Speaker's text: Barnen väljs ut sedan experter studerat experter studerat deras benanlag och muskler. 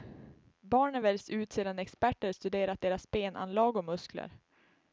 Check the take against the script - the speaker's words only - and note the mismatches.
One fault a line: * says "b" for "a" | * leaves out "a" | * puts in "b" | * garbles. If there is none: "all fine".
* leaves out "experter studerat"